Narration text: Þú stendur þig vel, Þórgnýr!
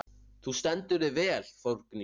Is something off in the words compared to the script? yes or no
no